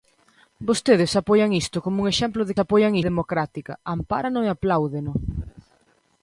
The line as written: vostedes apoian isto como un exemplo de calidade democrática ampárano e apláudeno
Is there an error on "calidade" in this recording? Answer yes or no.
yes